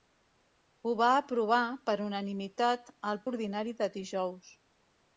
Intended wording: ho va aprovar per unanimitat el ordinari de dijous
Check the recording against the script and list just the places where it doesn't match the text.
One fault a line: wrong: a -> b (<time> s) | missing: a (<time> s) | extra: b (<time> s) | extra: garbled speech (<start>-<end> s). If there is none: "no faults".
no faults